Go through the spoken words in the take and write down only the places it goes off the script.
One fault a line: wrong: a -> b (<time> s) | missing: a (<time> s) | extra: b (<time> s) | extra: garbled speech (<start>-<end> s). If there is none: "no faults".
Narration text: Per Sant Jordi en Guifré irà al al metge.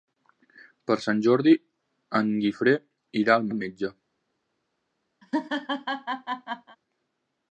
no faults